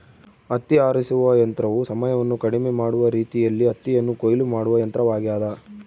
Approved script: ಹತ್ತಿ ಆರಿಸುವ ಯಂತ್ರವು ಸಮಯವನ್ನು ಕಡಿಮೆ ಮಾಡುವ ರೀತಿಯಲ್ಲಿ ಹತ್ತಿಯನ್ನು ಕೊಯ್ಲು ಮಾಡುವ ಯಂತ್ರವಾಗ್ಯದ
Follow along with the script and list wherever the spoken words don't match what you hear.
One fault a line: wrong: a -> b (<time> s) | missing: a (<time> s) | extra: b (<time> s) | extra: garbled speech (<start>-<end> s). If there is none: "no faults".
no faults